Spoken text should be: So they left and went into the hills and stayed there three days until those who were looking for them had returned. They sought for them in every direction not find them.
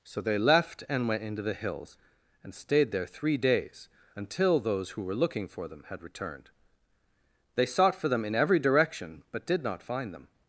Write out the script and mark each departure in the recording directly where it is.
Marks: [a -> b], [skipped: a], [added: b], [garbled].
So they left and went into the hills and stayed there three days until those who were looking for them had returned. They sought for them in every direction [added: but did] not find them.